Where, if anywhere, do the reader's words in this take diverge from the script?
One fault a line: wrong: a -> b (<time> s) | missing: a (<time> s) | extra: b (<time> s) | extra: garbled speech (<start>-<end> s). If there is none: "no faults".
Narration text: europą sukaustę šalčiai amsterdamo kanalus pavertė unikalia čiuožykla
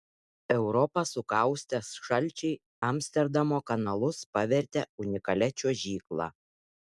no faults